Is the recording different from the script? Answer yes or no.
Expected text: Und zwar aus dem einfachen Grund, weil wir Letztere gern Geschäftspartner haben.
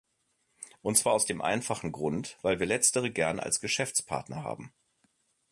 yes